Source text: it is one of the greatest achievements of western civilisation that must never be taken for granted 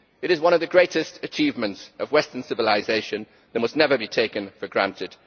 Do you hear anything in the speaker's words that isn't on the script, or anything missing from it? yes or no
no